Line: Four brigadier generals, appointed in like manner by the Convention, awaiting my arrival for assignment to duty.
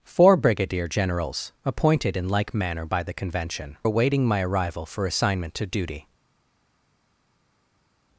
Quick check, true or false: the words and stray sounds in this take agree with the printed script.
true